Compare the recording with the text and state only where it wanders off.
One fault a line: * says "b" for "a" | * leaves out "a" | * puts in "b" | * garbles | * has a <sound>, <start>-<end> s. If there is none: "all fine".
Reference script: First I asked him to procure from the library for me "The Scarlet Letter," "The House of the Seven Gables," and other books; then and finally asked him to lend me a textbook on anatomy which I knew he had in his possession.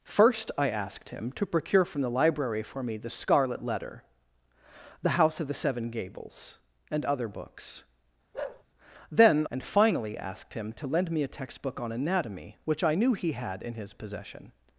* has a bark, 8.3-8.6 s